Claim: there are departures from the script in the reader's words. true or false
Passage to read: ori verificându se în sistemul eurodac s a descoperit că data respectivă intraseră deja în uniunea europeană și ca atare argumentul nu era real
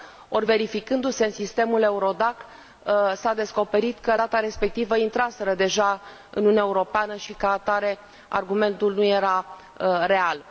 false